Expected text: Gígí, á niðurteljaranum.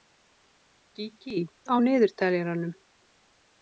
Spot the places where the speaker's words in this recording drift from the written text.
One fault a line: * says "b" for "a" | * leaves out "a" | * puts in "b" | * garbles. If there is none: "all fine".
all fine